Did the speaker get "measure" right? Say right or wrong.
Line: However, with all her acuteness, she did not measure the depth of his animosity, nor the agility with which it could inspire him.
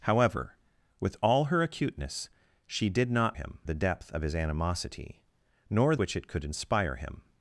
wrong